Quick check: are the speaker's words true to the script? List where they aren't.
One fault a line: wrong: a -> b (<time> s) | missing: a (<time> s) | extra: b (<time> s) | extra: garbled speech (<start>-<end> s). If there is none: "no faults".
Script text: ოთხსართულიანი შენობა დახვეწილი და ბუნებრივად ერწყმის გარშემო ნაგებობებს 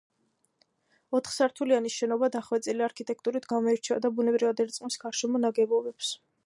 extra: არქიტექტურით გამოირჩევა (2.9 s)